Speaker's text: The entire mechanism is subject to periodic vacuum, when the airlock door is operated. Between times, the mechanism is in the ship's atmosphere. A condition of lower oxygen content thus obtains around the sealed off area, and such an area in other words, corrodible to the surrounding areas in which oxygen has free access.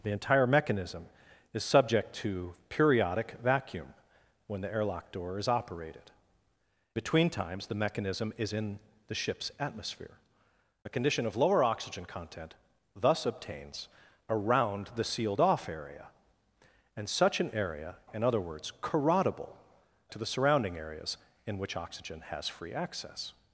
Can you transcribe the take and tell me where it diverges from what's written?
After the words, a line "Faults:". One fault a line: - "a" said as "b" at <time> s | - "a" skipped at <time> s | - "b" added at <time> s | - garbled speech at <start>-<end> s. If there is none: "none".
The entire mechanism is subject to periodic vacuum, when the airlock door is operated. Between times, the mechanism is in the ship's atmosphere. A condition of lower oxygen content thus obtains around the sealed off area, and such an area in other words, corrodible to the surrounding areas in which oxygen has free access.
Faults:
none